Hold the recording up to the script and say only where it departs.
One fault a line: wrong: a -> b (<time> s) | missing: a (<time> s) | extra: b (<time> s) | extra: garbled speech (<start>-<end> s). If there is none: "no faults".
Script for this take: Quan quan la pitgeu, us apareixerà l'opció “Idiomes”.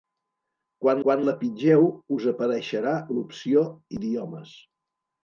no faults